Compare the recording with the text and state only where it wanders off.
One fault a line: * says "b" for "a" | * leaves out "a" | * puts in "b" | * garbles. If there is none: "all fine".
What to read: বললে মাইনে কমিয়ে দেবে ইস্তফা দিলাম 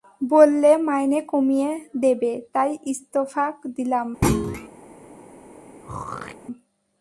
* puts in "তাই"